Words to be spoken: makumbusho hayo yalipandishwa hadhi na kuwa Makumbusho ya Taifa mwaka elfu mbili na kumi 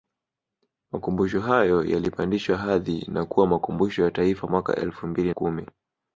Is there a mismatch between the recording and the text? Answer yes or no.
yes